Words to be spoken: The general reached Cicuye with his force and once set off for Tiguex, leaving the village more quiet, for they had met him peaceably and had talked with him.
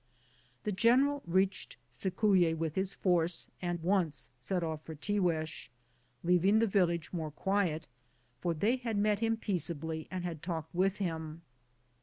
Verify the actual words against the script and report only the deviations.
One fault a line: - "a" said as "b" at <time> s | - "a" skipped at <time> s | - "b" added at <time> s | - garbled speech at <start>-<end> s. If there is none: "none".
none